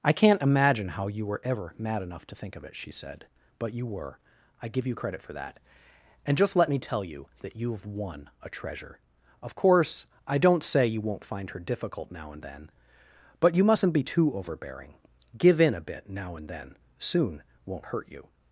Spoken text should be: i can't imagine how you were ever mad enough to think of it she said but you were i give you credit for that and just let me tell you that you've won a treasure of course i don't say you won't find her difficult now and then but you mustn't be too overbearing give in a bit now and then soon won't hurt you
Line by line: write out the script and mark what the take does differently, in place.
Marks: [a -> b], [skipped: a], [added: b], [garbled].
i can't imagine how you were ever mad enough to think of it she said but you were i give you credit for that and just let me tell you that you've won a treasure of course i don't say you won't find her difficult now and then but you mustn't be too overbearing give in a bit now and then soon won't hurt you